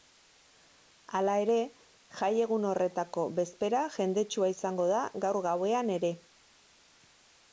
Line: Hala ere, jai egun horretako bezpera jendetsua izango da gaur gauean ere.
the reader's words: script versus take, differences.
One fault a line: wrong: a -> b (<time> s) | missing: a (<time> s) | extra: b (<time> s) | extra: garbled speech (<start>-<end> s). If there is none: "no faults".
no faults